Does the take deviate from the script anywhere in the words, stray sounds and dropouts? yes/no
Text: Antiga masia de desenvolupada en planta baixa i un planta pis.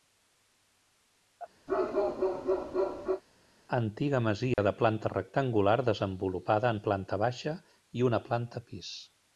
yes